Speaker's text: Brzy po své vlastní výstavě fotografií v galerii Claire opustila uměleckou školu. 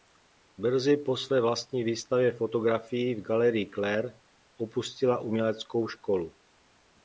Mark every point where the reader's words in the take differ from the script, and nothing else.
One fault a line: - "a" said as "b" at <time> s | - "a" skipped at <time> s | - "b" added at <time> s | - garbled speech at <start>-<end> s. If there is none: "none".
none